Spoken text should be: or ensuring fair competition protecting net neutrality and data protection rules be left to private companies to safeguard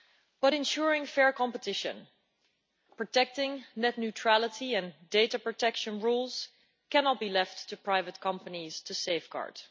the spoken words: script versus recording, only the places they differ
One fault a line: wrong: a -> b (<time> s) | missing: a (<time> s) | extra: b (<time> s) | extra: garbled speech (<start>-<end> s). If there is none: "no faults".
wrong: or -> but (0.4 s)
extra: cannot (6.9 s)